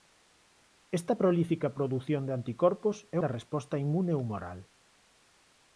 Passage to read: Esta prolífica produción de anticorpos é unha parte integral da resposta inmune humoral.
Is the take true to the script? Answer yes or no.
no